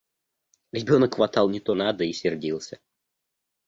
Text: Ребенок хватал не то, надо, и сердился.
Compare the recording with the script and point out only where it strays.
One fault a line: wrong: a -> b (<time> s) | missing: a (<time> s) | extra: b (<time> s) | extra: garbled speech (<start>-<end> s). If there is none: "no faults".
no faults